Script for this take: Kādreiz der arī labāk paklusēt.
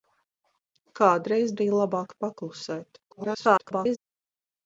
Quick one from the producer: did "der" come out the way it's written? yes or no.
no